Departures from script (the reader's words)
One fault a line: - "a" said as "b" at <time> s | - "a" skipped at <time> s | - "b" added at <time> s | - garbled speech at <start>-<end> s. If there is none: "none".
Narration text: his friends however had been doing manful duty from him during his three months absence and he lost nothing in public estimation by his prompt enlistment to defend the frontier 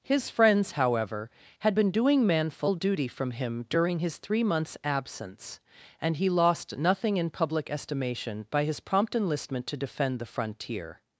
none